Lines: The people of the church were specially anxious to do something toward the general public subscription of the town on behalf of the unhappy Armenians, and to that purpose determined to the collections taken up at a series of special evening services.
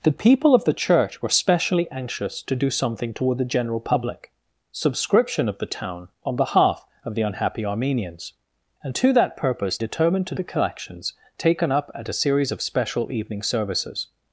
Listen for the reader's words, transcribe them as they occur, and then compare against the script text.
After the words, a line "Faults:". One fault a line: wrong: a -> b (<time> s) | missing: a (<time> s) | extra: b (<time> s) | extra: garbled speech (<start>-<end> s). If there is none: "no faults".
The people of the church were specially anxious to do something toward the general public subscription of the town on behalf of the unhappy Armenians, and to that purpose determined to the collections taken up at a series of special evening services.
Faults:
no faults